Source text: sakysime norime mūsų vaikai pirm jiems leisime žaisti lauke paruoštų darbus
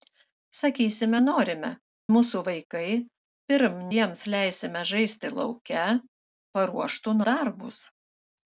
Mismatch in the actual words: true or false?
false